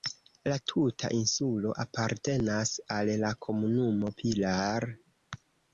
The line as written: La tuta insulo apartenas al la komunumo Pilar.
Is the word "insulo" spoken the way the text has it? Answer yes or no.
yes